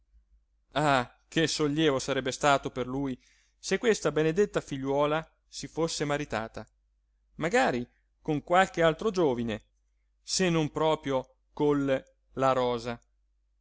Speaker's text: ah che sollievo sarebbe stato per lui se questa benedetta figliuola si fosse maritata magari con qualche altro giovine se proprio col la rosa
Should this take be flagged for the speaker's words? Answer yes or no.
yes